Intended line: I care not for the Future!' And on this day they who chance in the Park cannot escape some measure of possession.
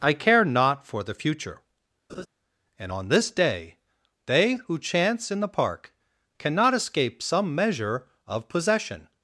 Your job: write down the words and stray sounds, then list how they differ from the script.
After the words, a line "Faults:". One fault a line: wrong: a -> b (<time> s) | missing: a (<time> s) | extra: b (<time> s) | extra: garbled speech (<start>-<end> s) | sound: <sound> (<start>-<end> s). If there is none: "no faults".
I care not for the Future!' And on this day they who chance in the Park cannot escape some measure of possession.
Faults:
sound: laugh (2.1-2.3 s)